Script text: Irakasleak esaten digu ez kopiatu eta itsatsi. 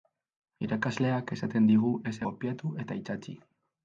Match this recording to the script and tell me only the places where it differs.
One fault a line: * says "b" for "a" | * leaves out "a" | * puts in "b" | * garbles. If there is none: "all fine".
all fine